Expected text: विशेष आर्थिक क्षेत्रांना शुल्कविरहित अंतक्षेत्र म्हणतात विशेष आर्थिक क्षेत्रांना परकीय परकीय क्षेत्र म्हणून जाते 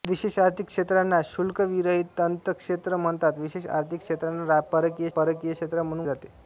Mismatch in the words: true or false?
false